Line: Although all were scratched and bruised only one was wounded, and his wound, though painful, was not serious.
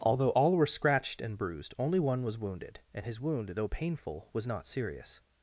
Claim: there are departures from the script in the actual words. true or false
false